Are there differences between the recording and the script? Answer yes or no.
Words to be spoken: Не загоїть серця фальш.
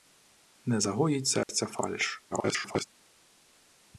yes